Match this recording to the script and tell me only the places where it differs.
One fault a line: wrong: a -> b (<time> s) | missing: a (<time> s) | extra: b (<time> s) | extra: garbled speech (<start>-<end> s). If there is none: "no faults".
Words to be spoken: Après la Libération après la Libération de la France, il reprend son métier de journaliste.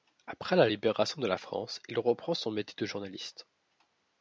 missing: après la Libération (1.2 s)